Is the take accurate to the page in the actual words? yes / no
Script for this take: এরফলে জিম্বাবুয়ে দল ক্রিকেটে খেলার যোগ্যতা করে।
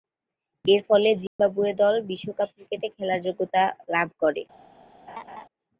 no